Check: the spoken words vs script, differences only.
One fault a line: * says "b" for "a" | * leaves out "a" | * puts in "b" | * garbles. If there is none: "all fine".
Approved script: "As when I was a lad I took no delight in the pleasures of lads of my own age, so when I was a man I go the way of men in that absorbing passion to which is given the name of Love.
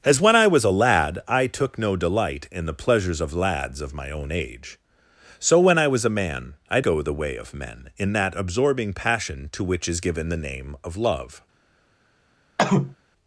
all fine